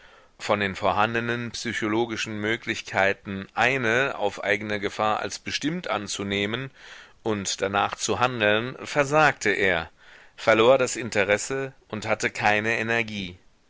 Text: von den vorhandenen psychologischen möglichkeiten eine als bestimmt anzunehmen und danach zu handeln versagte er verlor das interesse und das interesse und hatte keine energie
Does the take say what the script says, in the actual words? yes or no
no